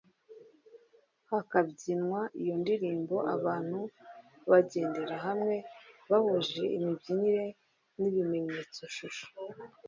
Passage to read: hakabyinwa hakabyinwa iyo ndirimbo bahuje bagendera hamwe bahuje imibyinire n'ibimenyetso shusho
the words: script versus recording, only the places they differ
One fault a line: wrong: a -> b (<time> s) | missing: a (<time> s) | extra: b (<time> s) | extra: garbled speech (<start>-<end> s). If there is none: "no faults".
missing: hakabyinwa (2.2 s)
wrong: bahuje -> abantu (3.4 s)